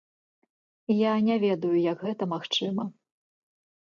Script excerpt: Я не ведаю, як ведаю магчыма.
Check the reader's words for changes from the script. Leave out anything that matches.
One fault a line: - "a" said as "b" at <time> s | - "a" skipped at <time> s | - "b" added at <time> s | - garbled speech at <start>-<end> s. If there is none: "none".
- "ведаю" said as "гэта" at 2.1 s